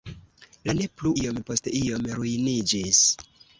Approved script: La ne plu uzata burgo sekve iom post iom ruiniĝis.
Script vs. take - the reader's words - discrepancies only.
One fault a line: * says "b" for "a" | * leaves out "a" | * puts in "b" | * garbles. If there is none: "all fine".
* leaves out "uzata burgo sekve"